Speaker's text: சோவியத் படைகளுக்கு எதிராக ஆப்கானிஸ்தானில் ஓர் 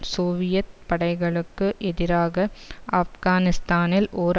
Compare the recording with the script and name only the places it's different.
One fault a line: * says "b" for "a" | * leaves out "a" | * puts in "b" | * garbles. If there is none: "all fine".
all fine